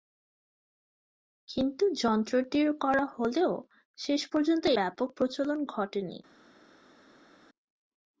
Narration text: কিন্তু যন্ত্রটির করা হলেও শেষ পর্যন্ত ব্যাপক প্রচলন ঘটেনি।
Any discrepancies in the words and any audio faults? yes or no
no